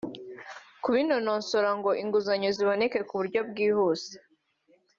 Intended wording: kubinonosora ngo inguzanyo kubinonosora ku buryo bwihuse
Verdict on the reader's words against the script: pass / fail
fail